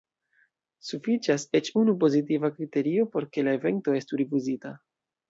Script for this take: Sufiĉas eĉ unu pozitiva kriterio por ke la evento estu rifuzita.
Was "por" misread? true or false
false